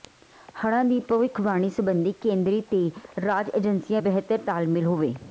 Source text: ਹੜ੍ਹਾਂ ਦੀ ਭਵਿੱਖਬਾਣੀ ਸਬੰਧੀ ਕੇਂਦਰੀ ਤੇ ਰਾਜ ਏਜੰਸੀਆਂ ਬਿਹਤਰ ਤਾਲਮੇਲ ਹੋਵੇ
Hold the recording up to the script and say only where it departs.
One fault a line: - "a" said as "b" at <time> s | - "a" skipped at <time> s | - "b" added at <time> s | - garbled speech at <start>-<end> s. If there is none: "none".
none